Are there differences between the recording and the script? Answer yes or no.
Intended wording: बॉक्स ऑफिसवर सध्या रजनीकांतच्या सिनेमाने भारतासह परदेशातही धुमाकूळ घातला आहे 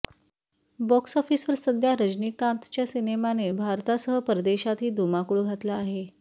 no